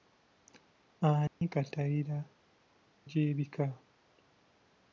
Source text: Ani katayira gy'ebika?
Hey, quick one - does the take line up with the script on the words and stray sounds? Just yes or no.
no